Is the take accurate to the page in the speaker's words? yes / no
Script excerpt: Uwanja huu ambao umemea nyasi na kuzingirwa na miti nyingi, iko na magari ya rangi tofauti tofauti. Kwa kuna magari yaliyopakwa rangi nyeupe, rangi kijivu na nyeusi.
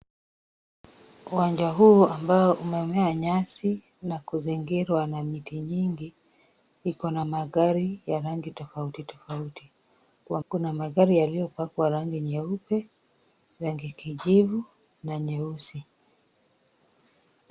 yes